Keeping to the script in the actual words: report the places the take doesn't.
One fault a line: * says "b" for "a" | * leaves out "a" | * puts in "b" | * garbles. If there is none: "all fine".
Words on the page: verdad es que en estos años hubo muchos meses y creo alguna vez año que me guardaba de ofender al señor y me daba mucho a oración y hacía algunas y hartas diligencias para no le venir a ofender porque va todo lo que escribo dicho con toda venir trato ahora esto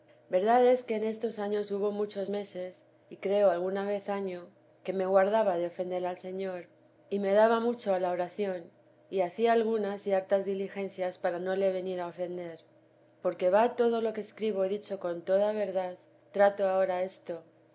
* puts in "la"
* says "verdad" for "venir"